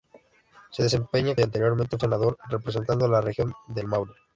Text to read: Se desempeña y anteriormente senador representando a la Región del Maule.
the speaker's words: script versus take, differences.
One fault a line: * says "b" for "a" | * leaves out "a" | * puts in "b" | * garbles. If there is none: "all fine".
all fine